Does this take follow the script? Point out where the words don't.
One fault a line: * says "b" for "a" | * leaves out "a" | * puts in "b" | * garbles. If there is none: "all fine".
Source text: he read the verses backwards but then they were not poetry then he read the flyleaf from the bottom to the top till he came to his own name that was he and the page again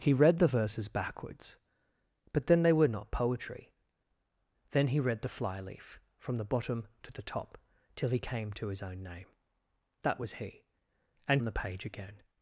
all fine